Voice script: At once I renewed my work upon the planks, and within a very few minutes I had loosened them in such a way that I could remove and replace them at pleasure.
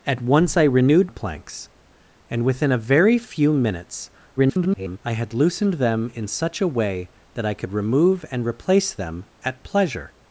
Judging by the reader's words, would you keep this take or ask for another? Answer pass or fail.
fail